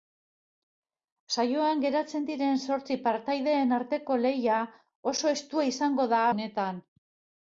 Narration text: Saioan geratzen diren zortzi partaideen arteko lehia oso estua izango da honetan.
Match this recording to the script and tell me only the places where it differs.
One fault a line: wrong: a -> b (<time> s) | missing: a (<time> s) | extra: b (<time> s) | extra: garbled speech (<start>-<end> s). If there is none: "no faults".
no faults